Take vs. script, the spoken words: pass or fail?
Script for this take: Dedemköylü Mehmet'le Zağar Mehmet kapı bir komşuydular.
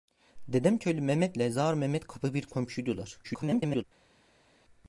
fail